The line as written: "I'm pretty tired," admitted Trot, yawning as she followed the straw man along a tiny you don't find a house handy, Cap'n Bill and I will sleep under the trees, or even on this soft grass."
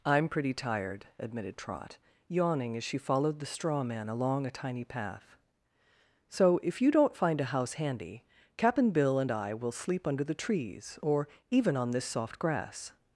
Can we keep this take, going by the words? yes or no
no